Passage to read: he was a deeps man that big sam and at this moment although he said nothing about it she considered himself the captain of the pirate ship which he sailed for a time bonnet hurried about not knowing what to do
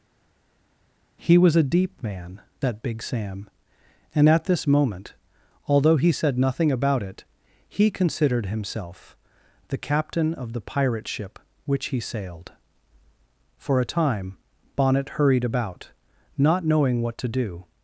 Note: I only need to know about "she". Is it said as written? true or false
false